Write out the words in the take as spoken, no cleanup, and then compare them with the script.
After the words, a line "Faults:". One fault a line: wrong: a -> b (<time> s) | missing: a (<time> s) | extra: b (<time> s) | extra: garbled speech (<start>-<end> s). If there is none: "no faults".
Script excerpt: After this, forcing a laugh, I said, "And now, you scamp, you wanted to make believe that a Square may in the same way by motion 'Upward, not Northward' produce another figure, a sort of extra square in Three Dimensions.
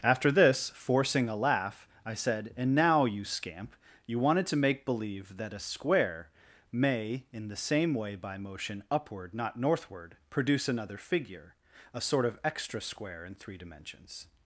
After this, forcing a laugh, I said, "And now, you scamp, you wanted to make believe that a Square may in the same way by motion 'Upward, not Northward' produce another figure, a sort of extra square in Three Dimensions.
Faults:
no faults